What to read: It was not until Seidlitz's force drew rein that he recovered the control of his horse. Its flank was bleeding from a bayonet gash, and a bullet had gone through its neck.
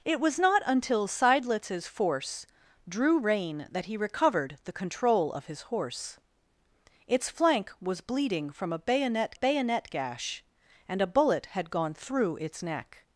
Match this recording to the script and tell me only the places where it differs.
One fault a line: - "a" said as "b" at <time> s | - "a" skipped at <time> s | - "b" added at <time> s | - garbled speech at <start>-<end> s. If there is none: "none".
- "bayonet" added at 9.3 s